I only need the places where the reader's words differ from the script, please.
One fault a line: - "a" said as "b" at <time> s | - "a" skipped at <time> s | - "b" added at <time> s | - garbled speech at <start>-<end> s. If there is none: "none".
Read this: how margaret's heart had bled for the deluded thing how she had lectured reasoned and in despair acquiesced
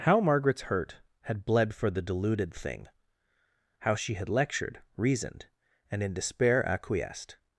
- "heart" said as "hurt" at 0.6 s